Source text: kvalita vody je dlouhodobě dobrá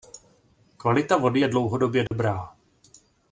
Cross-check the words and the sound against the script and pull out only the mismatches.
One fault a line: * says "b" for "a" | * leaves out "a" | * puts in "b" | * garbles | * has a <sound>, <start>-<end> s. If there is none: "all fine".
* has a dropout, 2.1-2.1 s